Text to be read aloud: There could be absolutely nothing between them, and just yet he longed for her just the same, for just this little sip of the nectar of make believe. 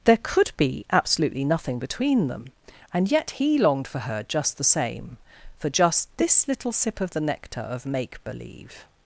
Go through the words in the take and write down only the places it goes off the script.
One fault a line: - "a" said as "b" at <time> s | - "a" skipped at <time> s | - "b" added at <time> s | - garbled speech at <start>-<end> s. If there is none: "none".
- "just" skipped at 3.1 s